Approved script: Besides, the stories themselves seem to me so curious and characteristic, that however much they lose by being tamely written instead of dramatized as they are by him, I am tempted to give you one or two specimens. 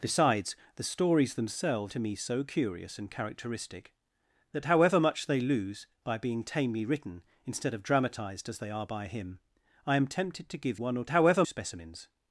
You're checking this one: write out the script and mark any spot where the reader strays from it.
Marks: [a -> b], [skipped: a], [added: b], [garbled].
Besides, the stories themselves [skipped: seem] to me so curious and characteristic, that however much they lose by being tamely written instead of dramatized as they are by him, I am tempted to give [skipped: you] one or [two -> however] specimens.